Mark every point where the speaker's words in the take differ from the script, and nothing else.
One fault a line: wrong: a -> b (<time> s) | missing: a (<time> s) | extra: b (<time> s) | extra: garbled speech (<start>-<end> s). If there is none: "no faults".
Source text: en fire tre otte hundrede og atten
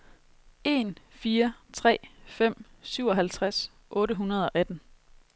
extra: fem syvoghalvtreds (2.2 s)